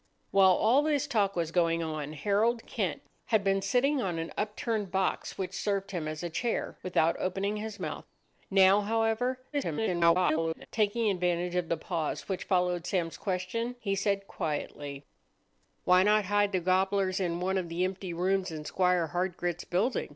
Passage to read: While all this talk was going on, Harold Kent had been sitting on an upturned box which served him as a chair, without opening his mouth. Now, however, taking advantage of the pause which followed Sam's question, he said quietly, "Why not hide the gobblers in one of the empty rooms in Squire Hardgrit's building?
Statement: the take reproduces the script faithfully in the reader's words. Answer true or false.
false